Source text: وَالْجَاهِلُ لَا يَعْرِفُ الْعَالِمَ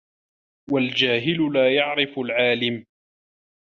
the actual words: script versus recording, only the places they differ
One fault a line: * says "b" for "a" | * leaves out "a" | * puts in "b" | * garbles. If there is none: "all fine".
all fine